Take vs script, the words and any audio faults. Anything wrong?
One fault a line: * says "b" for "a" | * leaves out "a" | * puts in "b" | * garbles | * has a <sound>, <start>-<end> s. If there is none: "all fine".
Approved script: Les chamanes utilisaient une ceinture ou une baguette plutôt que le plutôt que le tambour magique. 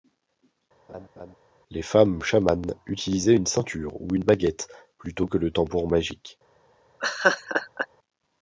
* has a laugh, 0.9-1.4 s
* puts in "femmes"
* leaves out "plutôt que le"
* has a laugh, 7.0-7.9 s